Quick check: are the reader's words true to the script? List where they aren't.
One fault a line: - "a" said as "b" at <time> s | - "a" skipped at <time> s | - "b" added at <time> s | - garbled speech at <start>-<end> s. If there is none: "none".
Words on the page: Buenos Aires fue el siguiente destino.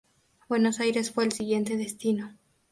none